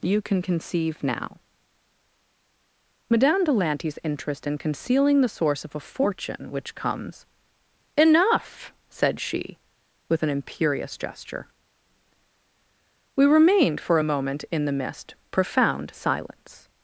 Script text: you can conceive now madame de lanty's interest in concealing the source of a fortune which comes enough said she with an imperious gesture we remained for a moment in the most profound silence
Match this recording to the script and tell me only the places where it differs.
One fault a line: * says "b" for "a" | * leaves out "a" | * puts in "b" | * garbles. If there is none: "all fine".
* says "mist" for "most"